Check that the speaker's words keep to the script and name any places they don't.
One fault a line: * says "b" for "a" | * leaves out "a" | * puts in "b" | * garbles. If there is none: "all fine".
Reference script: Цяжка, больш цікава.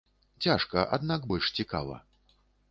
* puts in "аднак"